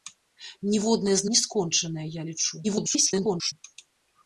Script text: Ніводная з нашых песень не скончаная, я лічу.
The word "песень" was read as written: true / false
false